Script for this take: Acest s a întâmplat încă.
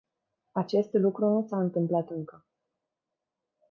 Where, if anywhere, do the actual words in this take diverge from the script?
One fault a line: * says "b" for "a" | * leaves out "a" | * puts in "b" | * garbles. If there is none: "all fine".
* puts in "lucru nu"